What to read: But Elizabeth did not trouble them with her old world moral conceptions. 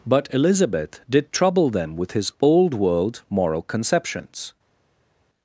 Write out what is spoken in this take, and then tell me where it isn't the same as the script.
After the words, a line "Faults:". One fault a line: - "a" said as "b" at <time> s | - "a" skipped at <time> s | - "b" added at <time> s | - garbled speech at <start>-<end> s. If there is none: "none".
But Elizabeth did trouble them with his old world moral conceptions.
Faults:
- "not" skipped at 1.3 s
- "her" said as "his" at 2.1 s